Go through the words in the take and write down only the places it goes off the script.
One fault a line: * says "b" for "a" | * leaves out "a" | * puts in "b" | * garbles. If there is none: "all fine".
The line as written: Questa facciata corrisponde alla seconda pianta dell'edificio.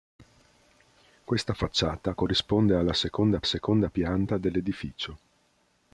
* puts in "seconda"